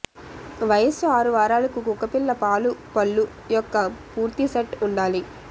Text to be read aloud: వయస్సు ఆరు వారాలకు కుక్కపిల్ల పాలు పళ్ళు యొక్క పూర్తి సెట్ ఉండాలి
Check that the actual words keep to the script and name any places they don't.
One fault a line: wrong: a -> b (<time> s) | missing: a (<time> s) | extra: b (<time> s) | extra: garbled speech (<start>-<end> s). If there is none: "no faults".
no faults